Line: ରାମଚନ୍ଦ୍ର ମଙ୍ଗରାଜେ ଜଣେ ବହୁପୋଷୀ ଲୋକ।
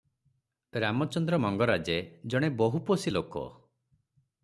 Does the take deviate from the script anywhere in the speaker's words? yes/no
no